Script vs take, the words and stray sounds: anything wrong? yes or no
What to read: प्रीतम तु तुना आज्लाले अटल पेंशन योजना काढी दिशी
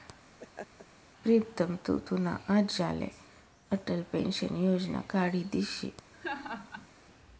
yes